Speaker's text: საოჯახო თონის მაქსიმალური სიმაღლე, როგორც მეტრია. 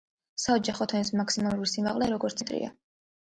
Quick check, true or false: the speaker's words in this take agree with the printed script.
true